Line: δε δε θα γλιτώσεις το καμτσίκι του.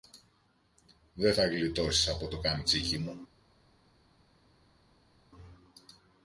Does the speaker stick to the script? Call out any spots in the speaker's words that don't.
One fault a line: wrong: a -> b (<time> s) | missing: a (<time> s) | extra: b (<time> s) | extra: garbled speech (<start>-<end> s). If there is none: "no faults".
missing: δε (1.3 s)
extra: από (2.1 s)
wrong: του -> μου (3.0 s)